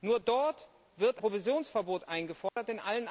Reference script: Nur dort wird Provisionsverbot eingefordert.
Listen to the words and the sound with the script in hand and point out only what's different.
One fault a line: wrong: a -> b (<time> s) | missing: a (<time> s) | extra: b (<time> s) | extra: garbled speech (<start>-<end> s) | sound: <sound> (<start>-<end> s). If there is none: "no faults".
sound: dropout (2.5-2.6 s)